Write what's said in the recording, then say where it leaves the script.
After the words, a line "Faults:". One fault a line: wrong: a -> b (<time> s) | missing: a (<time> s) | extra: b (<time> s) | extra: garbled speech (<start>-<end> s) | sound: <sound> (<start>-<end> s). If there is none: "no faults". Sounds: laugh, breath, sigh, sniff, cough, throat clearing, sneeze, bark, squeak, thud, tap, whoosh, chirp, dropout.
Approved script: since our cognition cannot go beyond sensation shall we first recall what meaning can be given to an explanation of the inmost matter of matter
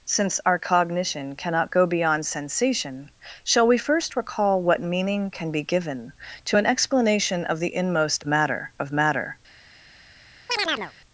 since our cognition cannot go beyond sensation shall we first recall what meaning can be given to an explanation of the inmost matter of matter
Faults:
sound: chirp (10.5-10.9 s)